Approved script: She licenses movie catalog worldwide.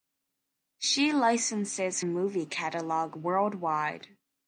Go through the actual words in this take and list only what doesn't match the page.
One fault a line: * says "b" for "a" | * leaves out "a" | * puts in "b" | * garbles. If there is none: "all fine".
all fine